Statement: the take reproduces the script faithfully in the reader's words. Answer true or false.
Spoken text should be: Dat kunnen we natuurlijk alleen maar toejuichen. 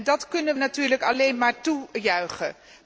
false